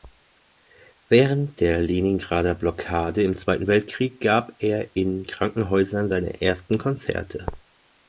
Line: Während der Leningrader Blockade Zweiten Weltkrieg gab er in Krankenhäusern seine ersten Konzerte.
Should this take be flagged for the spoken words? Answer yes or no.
yes